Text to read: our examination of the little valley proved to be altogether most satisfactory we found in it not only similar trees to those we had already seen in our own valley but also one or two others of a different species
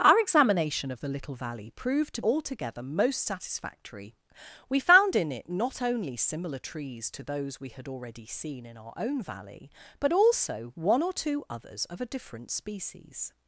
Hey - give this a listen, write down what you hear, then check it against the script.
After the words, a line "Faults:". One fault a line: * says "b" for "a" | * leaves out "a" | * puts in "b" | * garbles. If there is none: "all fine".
our examination of the little valley proved to altogether most satisfactory we found in it not only similar trees to those we had already seen in our own valley but also one or two others of a different species
Faults:
* leaves out "be"